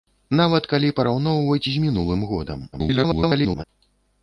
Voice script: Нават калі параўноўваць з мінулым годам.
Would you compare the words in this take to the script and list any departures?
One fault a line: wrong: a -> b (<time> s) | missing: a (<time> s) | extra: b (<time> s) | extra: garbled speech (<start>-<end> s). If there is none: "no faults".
extra: garbled speech (2.7-3.6 s)